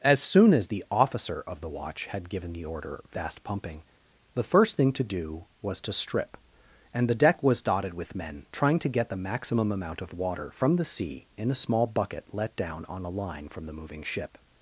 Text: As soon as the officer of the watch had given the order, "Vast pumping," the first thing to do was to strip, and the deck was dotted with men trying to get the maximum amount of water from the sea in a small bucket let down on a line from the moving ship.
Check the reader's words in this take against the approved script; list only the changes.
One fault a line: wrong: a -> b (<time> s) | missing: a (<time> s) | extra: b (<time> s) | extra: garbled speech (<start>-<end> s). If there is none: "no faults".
no faults